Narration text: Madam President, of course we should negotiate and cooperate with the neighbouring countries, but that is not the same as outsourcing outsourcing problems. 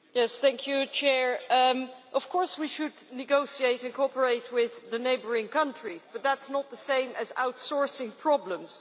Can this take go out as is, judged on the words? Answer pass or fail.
fail